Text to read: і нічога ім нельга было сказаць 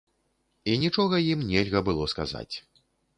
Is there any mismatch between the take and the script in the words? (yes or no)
no